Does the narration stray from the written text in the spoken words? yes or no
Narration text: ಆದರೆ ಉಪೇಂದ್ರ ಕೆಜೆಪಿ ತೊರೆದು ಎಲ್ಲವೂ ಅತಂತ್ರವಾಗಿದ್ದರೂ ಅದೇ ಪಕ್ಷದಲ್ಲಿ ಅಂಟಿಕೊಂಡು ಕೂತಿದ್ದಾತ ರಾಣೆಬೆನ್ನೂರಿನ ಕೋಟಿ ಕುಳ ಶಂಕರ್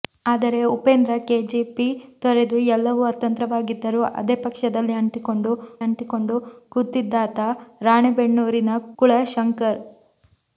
yes